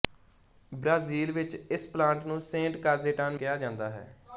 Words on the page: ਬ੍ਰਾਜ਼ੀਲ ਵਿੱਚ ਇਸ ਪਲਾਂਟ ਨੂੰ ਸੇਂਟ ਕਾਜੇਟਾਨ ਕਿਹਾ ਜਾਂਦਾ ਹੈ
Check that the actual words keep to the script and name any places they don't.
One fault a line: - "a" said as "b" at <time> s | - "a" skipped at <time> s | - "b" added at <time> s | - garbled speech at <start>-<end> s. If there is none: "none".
none